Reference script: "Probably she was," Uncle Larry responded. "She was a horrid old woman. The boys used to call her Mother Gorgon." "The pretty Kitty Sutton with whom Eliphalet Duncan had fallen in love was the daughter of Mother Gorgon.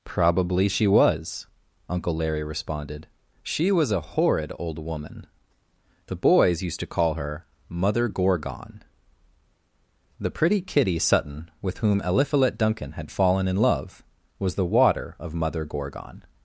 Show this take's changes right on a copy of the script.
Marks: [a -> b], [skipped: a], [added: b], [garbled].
"Probably she was," Uncle Larry responded. "She was a horrid old woman. The boys used to call her Mother Gorgon." "The pretty Kitty Sutton with whom Eliphalet Duncan had fallen in love was the [daughter -> water] of Mother Gorgon.